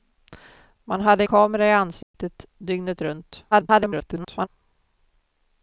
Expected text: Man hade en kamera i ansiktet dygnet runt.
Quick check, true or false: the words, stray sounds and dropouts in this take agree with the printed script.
false